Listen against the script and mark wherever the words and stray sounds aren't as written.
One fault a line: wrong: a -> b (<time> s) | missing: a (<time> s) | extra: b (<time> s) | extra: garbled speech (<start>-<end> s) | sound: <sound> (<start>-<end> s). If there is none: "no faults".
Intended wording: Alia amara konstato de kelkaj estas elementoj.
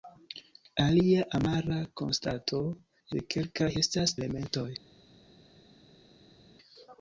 no faults